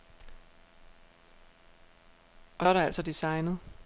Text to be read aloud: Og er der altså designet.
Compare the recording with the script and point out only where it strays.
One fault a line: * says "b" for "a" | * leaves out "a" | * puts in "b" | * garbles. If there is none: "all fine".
all fine